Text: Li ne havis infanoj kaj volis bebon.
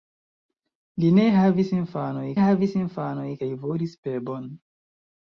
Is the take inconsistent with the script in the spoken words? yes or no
yes